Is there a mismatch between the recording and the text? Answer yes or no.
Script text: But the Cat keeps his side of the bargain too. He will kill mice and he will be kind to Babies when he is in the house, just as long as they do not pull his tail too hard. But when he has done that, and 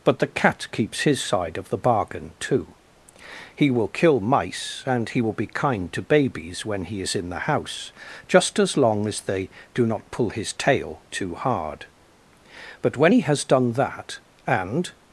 no